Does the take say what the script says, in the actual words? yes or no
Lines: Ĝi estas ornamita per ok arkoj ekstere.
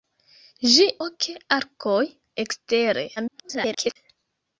no